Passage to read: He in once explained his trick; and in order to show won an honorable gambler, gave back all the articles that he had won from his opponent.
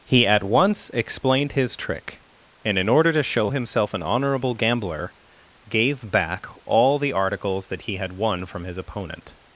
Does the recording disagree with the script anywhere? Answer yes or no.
yes